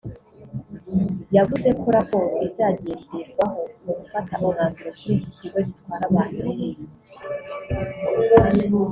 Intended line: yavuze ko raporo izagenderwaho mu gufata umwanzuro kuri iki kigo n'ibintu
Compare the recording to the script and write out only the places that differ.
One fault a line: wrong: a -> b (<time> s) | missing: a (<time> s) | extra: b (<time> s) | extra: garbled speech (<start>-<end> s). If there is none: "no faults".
extra: gitwara abantu (5.7 s)